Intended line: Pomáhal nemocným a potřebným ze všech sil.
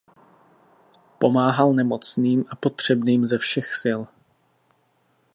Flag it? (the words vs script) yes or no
no